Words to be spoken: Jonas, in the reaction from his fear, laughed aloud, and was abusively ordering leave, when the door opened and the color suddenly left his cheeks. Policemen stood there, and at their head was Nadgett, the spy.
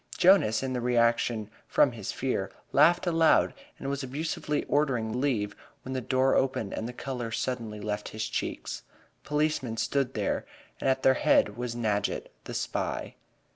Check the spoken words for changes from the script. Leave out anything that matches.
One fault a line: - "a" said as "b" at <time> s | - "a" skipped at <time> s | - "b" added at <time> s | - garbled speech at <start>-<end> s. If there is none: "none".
none